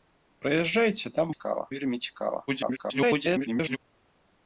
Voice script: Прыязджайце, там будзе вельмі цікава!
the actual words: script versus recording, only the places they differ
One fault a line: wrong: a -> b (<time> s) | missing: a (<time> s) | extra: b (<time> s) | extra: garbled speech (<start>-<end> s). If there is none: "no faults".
wrong: будзе -> цікава (1.3 s)
extra: garbled speech (2.5-3.8 s)